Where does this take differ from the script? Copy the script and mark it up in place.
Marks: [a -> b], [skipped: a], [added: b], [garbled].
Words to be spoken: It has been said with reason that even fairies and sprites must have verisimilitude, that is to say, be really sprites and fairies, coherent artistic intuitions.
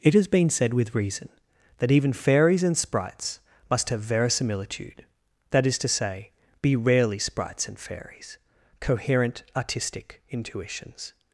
It has been said with reason that even fairies and sprites must have verisimilitude, that is to say, be [really -> rarely] sprites and fairies, coherent artistic intuitions.